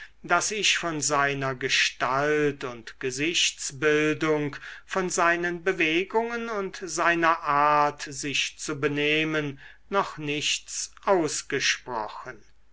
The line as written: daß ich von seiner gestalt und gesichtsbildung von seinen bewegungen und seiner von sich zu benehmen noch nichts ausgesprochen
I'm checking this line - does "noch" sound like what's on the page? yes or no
yes